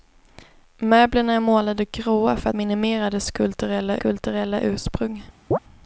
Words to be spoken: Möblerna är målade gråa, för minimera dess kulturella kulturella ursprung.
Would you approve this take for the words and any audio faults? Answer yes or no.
no